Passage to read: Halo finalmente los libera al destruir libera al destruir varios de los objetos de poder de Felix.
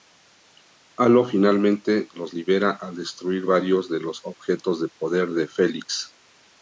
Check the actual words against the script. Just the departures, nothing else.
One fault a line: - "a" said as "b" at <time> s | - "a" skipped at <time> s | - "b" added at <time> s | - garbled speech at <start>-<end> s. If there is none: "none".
- "libera al destruir" skipped at 3.5 s